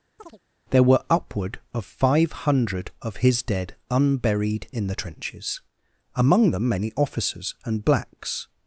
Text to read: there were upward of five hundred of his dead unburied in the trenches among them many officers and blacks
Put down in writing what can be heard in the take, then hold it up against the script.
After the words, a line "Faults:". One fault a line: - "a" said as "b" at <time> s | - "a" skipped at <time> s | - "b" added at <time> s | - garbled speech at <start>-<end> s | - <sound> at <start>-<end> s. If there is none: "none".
there were upward of five hundred of his dead unburied in the trenches among them many officers and blacks
Faults:
- chirp at 0.2-0.4 s